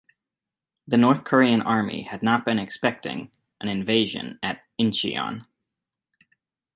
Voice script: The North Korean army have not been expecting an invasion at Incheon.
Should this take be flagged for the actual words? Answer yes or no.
yes